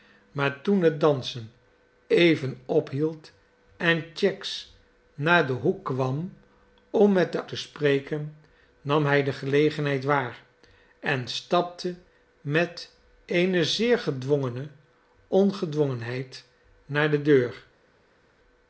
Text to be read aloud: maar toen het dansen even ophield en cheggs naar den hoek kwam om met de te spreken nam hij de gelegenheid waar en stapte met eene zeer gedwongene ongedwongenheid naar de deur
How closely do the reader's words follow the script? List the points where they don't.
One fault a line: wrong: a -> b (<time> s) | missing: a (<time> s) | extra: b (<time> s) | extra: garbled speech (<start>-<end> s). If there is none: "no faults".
no faults